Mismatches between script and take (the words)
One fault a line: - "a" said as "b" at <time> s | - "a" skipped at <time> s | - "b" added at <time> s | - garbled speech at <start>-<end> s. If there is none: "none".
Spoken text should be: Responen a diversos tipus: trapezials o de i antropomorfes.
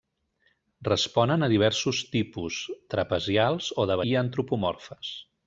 none